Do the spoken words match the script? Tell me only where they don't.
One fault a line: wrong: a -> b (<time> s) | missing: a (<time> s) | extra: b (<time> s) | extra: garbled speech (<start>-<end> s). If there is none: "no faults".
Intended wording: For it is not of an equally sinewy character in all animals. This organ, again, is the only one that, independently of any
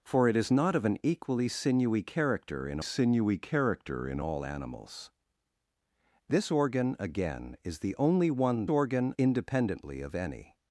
extra: sinewy character in (2.8 s)
wrong: that -> organ (8.7 s)